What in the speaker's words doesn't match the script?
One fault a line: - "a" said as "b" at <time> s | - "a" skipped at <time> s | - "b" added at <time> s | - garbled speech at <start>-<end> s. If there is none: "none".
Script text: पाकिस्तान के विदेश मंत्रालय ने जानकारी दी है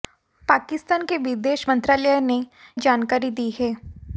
none